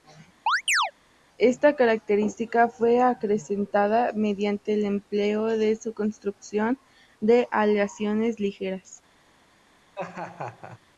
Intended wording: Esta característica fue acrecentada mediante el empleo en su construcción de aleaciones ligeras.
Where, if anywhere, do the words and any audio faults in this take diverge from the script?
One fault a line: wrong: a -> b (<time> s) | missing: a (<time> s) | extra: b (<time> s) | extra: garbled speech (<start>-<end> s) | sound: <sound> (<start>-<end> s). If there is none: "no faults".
sound: chirp (0.5-0.9 s)
sound: laugh (9.9-10.8 s)